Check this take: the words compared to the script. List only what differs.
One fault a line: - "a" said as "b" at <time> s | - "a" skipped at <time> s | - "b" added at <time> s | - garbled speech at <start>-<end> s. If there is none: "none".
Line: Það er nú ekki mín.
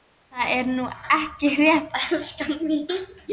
- "rétt elskan" added at 1.6 s